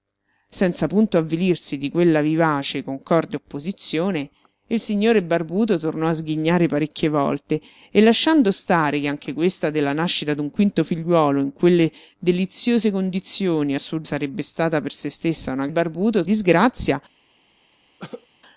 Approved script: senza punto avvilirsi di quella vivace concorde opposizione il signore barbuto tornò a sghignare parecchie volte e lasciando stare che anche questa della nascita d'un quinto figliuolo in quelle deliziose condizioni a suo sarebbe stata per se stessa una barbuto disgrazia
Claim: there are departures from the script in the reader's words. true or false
false